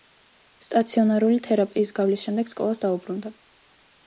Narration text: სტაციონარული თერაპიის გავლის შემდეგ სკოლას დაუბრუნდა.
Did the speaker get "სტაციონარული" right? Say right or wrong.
right